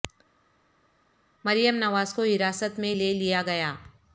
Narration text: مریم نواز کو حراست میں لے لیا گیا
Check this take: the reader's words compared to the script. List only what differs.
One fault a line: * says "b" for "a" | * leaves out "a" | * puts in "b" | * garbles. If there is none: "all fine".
all fine